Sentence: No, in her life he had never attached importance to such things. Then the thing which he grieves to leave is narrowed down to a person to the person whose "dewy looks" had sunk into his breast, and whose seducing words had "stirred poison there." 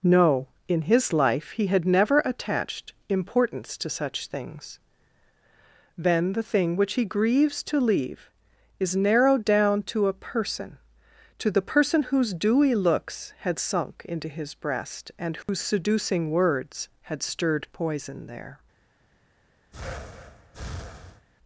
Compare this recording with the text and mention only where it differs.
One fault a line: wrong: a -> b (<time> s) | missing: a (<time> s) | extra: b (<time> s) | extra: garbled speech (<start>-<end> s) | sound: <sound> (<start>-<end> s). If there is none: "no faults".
wrong: her -> his (0.8 s)
sound: dropout (15.4-15.5 s)
sound: breath (19.7-21.3 s)